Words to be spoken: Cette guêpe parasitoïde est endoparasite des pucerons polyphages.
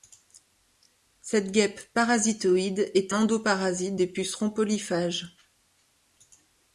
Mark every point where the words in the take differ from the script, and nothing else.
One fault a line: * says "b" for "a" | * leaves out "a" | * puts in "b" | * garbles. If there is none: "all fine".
all fine